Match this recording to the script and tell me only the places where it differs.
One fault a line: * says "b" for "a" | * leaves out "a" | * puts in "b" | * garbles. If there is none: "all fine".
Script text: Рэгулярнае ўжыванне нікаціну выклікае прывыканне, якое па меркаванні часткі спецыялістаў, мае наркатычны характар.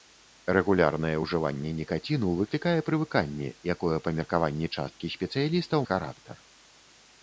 * leaves out "мае наркатычны"